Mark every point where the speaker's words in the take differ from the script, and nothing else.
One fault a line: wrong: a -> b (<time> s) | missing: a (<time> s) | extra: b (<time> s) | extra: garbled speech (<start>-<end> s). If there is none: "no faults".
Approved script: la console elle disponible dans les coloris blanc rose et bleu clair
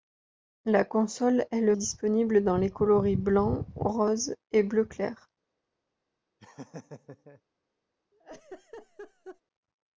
no faults